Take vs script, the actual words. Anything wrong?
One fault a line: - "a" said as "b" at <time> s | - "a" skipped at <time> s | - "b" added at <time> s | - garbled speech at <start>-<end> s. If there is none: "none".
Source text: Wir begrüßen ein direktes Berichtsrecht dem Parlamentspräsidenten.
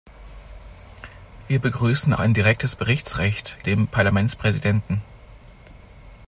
none